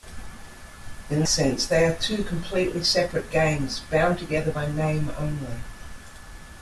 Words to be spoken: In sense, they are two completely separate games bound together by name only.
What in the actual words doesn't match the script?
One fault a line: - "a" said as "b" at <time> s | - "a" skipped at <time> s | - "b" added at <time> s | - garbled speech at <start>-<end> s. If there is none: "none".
none